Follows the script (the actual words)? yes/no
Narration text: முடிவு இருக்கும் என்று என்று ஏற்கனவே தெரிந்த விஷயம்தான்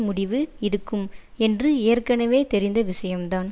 no